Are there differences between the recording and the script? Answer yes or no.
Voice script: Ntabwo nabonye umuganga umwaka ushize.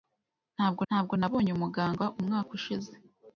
yes